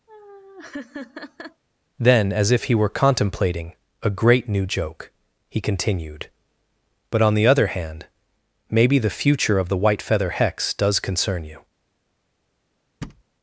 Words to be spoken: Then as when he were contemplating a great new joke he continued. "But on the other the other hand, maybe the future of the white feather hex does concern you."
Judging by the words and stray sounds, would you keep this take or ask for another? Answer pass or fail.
fail